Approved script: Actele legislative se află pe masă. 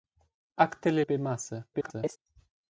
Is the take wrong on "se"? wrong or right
wrong